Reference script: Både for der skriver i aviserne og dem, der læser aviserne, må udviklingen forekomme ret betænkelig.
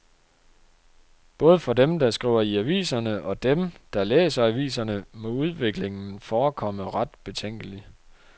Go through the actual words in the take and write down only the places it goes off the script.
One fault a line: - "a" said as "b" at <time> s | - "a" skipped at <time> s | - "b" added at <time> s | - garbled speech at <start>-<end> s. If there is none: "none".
- "dem" added at 1.7 s